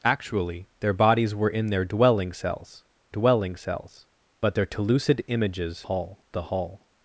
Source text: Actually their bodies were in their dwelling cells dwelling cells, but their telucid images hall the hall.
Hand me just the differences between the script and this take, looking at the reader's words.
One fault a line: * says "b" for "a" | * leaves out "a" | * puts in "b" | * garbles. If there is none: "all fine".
all fine